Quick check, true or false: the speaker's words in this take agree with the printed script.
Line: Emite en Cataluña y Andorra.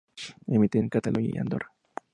true